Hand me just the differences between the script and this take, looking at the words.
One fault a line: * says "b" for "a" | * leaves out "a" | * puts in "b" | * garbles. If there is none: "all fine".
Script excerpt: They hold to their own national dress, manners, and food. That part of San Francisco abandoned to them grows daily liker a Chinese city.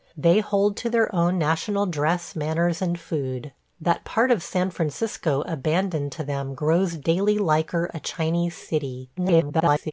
* garbles